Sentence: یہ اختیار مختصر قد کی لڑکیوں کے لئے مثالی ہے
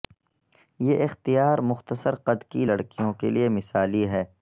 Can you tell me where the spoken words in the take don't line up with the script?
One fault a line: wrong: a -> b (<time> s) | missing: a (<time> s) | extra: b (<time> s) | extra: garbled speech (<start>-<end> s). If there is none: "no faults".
no faults